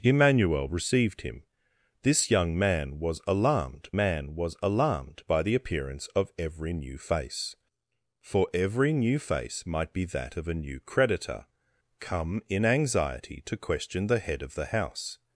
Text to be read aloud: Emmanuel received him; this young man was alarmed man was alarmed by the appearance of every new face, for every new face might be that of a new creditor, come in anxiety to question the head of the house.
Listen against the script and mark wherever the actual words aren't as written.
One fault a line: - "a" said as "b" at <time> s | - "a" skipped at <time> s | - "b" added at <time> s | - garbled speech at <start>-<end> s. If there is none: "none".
none